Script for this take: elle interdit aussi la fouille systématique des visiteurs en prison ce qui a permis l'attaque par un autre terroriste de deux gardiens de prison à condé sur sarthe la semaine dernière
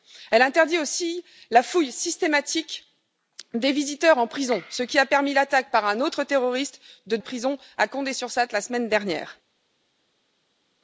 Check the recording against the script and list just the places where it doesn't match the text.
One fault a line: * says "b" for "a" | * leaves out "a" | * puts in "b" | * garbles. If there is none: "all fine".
* leaves out "deux gardiens"